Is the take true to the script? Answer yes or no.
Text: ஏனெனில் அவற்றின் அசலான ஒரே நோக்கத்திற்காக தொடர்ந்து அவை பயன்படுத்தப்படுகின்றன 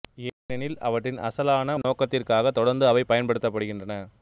no